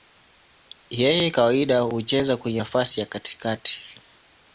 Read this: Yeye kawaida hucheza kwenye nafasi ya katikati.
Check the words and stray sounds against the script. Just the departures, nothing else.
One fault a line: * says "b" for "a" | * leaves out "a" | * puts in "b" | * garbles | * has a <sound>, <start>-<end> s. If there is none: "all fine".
all fine